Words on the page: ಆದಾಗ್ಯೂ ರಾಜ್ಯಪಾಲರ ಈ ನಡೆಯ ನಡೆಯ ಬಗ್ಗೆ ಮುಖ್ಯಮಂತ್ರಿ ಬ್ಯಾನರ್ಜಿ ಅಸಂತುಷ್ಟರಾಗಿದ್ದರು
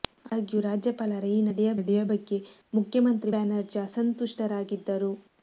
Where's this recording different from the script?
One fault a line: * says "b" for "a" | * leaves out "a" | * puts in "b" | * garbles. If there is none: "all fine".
all fine